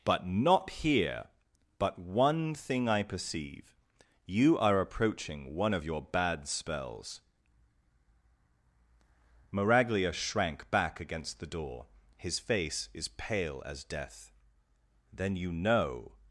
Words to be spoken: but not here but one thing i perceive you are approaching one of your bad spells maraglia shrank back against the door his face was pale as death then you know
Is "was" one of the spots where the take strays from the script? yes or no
yes